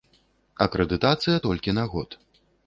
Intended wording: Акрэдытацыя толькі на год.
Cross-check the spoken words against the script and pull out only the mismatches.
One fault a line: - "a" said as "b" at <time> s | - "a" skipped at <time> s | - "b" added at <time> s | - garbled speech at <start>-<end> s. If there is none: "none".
none